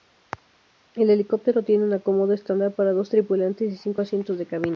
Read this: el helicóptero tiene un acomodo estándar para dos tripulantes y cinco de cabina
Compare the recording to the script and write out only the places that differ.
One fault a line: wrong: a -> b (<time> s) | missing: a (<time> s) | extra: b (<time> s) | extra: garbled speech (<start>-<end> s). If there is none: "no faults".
extra: asientos (4.0 s)